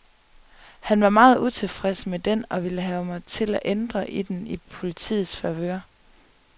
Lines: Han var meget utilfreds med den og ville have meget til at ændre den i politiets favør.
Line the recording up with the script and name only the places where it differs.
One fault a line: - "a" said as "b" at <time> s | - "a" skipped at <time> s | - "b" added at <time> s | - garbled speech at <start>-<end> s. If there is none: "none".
- "meget" said as "mig" at 3.0 s